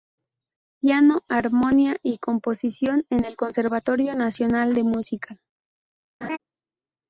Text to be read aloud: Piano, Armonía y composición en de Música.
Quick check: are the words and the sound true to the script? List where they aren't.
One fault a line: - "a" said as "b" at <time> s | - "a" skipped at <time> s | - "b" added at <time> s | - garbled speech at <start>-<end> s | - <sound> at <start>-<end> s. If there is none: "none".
- "el Conservatorio Nacional" added at 3.2 s
- laugh at 6.2-6.4 s